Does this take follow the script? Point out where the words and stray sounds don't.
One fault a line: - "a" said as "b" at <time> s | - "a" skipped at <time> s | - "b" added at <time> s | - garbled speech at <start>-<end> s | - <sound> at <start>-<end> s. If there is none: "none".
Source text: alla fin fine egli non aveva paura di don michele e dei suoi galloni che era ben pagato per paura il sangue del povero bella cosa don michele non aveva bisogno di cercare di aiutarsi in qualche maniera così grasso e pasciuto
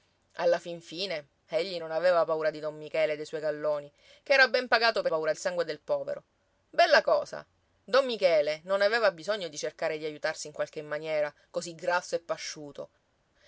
none